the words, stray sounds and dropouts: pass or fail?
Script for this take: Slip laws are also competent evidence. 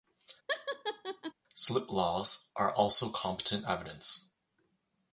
fail